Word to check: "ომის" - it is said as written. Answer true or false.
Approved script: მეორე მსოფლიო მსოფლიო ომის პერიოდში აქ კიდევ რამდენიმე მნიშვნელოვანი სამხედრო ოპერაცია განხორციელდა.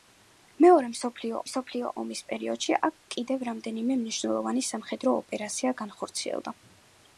true